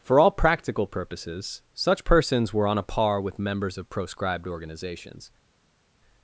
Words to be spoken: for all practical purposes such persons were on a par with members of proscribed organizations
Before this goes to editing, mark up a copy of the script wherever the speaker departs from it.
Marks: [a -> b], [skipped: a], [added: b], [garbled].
for all practical purposes such persons were on a par with members of proscribed organizations